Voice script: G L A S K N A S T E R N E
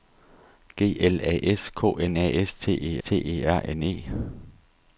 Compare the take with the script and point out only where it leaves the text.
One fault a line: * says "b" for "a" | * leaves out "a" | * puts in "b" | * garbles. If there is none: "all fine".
* puts in "T E"